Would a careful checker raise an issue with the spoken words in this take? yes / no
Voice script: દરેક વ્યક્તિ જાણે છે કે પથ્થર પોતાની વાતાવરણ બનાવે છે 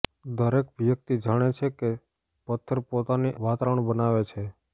no